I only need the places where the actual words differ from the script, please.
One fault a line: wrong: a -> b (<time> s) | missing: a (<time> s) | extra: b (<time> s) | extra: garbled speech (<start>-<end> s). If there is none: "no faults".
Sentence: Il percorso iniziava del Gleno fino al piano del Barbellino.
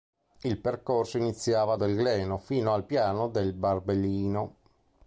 no faults